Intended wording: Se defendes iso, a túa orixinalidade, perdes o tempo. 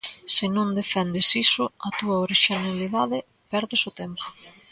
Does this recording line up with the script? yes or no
no